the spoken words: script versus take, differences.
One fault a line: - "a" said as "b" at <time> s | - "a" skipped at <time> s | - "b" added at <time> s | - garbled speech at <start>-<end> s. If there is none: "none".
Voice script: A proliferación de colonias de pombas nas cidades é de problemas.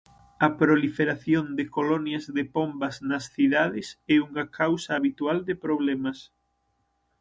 - "unha causa habitual" added at 4.3 s